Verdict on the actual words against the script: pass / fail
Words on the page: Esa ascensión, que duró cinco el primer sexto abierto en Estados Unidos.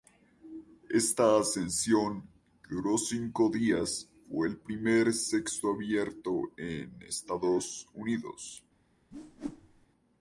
fail